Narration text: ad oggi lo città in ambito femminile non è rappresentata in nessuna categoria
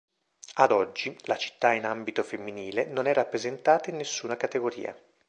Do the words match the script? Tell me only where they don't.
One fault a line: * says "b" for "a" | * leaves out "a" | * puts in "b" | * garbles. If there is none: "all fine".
* says "la" for "lo"